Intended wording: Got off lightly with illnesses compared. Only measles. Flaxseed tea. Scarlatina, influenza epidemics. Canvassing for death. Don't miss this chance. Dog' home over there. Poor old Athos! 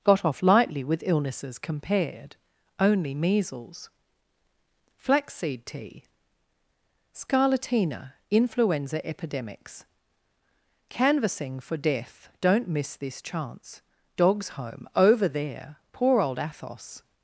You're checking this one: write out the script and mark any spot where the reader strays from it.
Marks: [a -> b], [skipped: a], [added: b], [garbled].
Got off lightly with illnesses compared. Only measles. Flaxseed tea. Scarlatina, influenza epidemics. Canvassing for death. Don't miss this chance. [Dog' -> Dogs] home over there. Poor old Athos!